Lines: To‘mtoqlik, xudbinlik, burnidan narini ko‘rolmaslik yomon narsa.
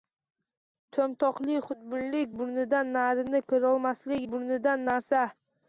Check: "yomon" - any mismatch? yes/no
yes